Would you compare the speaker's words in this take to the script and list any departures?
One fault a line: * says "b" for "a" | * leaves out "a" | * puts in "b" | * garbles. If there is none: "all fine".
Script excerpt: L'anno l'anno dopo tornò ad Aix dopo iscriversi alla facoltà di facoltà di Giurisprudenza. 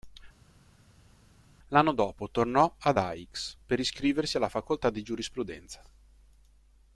* leaves out "l'anno"
* says "per" for "dopo"
* leaves out "facoltà di"